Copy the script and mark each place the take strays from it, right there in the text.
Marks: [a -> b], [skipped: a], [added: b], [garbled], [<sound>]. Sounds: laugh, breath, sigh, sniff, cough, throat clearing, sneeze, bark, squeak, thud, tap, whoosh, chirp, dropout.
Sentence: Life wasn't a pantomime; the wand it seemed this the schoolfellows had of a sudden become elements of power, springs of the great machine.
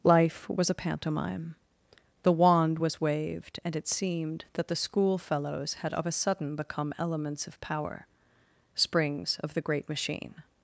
Life [wasn't -> was] a pantomime; the wand [added: was waved and] it seemed [this -> that] the schoolfellows had of a sudden become elements of power, springs of the great machine.